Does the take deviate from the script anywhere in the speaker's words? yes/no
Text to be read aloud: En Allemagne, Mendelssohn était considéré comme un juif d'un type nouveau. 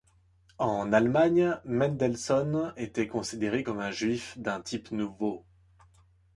no